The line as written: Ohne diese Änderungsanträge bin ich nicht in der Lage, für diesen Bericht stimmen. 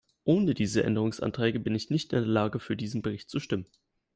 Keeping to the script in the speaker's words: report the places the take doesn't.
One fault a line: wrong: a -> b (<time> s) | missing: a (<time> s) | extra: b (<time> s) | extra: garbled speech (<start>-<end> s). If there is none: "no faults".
extra: zu (3.3 s)